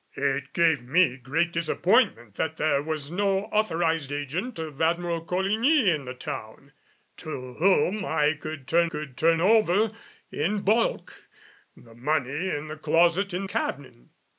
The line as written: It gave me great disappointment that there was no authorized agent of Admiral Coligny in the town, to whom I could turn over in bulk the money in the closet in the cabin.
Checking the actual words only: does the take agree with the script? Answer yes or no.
no